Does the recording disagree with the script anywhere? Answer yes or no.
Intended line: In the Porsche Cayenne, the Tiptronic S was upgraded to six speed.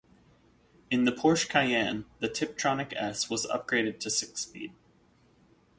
no